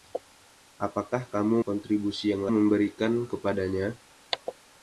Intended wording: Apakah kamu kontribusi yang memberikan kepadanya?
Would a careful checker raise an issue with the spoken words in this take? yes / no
no